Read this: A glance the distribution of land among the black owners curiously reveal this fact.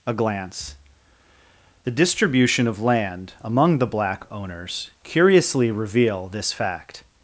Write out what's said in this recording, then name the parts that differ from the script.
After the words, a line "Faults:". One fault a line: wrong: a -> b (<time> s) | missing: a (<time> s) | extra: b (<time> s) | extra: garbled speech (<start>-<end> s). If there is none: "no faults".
A glance the distribution of land among the black owners curiously reveal this fact.
Faults:
no faults